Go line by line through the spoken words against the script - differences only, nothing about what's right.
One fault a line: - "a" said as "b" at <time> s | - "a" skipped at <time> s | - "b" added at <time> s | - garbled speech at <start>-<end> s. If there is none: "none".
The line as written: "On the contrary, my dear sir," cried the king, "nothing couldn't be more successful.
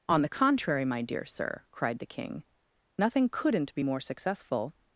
none